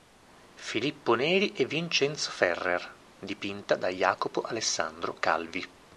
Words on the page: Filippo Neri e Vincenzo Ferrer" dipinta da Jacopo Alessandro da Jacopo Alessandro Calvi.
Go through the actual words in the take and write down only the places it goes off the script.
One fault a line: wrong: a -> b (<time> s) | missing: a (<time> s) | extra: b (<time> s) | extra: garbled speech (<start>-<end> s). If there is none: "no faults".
missing: da Jacopo Alessandro (5.2 s)